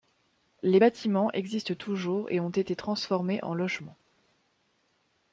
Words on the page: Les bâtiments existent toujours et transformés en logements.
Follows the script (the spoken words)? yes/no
no